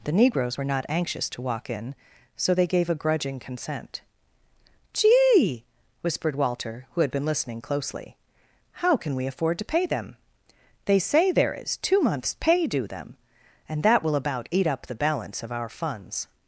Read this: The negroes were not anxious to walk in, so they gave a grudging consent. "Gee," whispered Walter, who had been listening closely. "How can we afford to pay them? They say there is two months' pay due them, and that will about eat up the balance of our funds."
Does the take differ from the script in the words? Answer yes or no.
no